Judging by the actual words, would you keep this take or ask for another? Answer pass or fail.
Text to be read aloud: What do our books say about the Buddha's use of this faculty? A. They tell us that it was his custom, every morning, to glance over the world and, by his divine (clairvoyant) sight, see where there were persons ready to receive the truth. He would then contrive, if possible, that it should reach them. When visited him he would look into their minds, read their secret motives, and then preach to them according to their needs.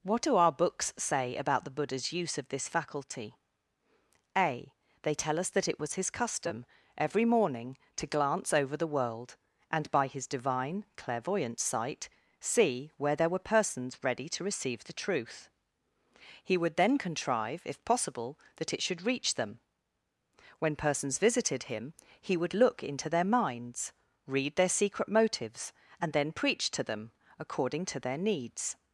fail